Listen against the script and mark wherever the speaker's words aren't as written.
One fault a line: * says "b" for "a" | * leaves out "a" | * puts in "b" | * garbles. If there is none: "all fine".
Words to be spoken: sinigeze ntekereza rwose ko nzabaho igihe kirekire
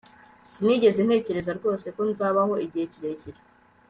all fine